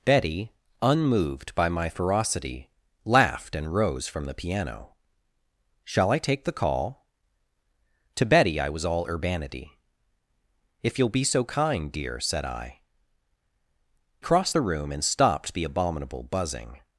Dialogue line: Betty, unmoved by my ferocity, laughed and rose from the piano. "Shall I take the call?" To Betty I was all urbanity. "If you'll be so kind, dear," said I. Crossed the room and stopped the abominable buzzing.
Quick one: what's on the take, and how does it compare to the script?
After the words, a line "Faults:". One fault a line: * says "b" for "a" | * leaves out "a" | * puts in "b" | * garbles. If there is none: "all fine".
Betty, unmoved by my ferocity, laughed and rose from the piano. "Shall I take the call?" To Betty I was all urbanity. "If you'll be so kind, dear," said I. Crossed the room and stopped the abominable buzzing.
Faults:
all fine